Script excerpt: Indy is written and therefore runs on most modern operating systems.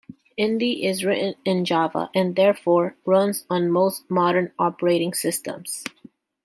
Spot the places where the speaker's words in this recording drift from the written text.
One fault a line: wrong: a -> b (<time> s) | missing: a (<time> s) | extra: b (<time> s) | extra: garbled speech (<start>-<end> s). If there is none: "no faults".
extra: in Java (1.4 s)